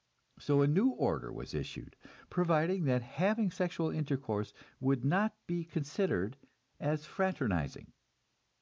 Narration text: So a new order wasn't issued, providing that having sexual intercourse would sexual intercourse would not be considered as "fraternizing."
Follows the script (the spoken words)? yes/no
no